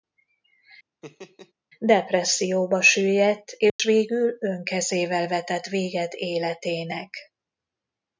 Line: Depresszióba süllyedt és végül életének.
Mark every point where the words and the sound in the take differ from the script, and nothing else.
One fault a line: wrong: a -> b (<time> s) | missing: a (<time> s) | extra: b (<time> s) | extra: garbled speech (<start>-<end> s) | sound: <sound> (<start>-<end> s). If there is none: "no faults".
sound: laugh (1.0-1.5 s)
sound: dropout (3.7-3.8 s)
extra: önkezével vetett véget (4.4 s)